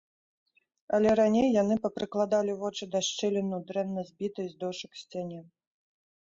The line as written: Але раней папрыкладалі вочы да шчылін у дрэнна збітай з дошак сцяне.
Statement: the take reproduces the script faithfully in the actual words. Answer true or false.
false